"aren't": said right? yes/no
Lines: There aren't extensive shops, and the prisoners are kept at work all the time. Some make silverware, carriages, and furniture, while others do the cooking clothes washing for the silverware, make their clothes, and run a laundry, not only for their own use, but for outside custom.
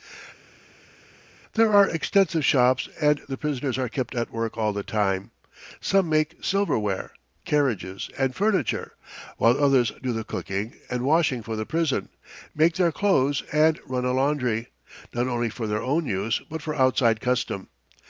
no